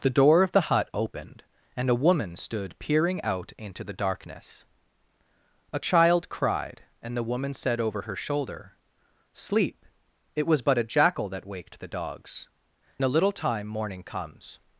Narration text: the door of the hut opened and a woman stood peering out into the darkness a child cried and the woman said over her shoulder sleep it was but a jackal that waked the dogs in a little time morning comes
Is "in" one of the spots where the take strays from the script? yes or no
yes